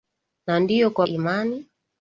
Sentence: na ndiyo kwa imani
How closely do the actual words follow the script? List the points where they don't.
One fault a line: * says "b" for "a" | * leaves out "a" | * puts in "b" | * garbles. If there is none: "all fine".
all fine